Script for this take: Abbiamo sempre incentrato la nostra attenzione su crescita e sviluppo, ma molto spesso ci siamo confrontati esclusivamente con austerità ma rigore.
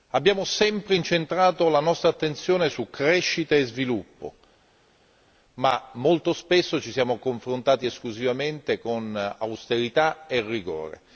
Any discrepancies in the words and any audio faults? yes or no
yes